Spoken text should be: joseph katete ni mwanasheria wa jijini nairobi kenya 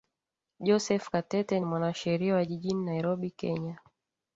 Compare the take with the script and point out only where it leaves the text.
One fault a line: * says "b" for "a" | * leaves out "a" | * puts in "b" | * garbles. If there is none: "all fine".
all fine